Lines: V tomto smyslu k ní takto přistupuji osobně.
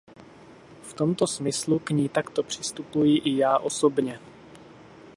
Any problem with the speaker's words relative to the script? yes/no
yes